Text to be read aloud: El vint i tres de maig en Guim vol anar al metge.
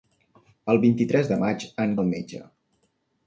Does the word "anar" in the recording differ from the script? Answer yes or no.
yes